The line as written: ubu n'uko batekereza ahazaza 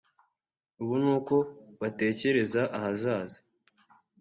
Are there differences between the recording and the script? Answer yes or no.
no